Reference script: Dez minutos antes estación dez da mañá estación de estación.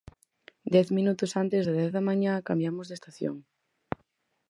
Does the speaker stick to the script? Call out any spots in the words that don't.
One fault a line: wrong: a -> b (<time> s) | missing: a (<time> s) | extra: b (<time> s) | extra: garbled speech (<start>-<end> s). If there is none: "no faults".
wrong: estación -> das (1.7 s)
wrong: estación -> cambiamos (2.5 s)